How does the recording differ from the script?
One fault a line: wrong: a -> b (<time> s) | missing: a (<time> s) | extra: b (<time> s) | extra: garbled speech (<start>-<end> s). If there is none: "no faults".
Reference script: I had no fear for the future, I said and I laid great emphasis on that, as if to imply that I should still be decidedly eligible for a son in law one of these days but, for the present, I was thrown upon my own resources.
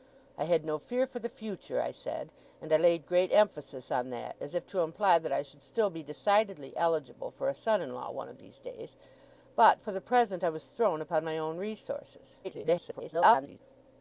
extra: garbled speech (12.4-13.6 s)